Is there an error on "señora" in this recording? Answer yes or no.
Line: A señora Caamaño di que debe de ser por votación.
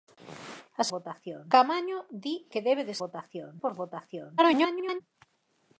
yes